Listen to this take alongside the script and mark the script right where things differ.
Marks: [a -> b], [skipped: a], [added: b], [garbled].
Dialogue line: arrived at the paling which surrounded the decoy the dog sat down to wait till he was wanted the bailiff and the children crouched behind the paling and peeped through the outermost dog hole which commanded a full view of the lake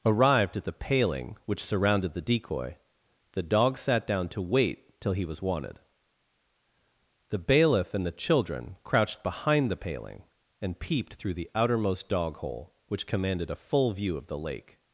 arrived at the paling which surrounded the decoy the dog sat down to wait till he was wanted the bailiff and the children crouched behind the paling and peeped through the outermost dog hole which commanded a full view of the lake